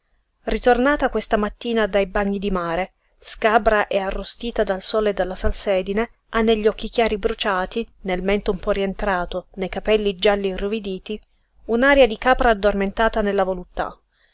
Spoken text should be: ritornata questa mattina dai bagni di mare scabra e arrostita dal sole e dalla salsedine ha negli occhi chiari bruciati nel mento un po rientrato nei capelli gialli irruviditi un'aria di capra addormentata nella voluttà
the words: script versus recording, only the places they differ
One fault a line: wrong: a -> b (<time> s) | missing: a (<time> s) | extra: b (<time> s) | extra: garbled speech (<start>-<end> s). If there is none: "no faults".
no faults